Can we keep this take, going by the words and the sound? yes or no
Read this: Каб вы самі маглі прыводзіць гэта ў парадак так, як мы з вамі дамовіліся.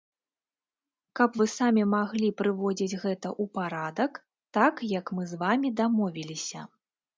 yes